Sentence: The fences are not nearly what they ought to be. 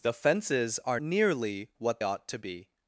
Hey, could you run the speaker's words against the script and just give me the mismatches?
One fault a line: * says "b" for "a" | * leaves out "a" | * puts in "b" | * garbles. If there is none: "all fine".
* leaves out "not"
* leaves out "they"